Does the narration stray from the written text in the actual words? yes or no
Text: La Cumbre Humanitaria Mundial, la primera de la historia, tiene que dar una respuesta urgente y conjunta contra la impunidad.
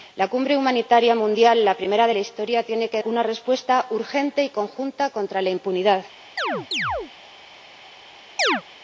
yes